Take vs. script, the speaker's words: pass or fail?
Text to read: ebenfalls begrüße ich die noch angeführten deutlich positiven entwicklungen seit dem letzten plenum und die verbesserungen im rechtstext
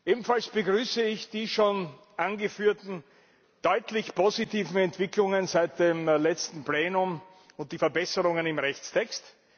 fail